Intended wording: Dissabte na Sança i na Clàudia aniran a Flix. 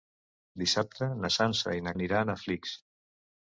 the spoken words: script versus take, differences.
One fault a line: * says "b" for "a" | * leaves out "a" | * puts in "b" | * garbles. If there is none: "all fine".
* leaves out "Clàudia"